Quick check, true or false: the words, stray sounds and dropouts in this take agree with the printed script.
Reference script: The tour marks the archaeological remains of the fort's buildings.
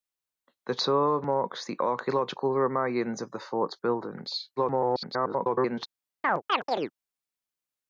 false